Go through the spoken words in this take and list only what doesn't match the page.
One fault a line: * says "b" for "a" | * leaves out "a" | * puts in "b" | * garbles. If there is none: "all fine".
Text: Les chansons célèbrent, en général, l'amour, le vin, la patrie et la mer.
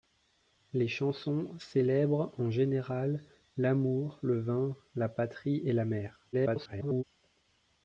* garbles